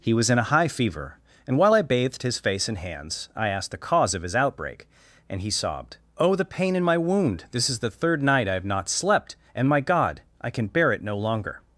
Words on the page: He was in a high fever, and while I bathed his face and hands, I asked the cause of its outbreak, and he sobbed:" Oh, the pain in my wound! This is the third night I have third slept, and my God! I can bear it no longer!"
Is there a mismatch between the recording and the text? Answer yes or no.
yes